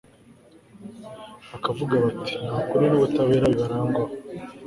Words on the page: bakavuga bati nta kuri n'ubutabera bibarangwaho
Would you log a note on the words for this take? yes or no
no